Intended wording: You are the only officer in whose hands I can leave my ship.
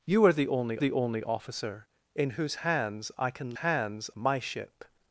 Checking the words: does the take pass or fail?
fail